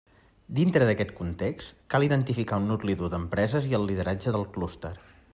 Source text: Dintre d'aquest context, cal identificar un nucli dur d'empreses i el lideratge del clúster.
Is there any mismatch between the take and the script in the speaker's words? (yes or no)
no